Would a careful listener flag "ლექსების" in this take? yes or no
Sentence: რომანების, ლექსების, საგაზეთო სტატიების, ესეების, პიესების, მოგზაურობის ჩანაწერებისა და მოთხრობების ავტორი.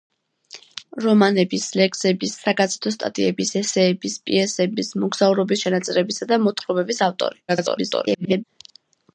no